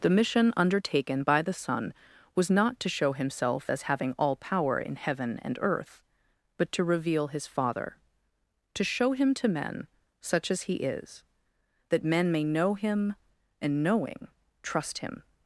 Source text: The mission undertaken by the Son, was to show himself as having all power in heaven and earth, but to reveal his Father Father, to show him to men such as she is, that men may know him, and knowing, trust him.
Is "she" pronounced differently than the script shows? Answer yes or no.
yes